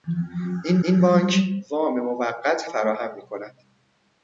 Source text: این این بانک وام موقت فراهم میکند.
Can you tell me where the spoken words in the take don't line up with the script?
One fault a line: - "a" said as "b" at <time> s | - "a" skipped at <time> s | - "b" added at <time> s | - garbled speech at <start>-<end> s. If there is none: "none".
none